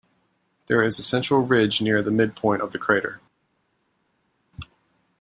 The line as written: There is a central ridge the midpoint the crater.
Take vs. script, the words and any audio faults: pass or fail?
fail